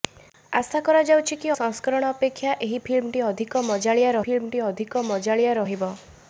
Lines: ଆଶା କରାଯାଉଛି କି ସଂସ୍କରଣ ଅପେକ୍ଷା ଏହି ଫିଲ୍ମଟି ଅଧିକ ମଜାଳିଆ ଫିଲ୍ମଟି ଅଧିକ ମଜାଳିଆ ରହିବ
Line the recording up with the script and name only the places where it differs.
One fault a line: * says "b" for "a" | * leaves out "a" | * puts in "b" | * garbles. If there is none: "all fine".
all fine